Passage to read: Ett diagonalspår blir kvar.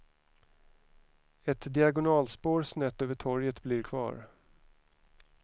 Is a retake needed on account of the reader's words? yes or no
yes